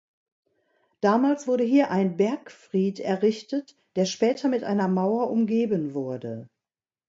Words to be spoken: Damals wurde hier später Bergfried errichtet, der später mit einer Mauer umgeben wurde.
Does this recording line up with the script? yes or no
no